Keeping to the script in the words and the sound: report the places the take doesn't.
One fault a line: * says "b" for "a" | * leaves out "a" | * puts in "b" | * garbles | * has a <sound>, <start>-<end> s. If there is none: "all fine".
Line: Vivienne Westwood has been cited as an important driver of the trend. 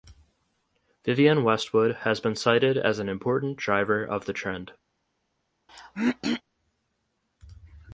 * has a throat clearing, 5.7-6.4 s